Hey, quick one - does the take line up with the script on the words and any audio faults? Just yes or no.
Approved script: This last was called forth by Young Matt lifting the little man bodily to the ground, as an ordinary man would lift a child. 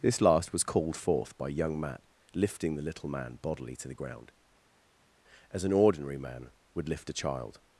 yes